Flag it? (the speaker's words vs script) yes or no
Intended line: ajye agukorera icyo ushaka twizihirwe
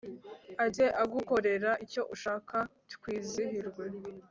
no